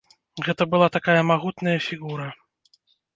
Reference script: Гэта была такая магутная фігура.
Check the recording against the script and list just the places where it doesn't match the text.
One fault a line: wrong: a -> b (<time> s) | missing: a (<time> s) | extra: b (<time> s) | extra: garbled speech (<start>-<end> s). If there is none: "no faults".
no faults